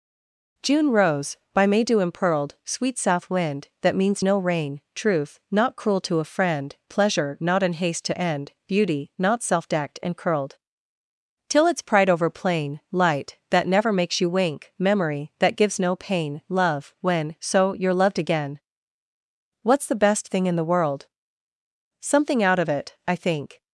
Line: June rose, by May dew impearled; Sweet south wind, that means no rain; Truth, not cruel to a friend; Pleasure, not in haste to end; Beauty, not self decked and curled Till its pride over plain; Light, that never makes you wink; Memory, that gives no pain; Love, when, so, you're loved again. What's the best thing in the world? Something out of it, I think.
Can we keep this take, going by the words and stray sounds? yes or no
yes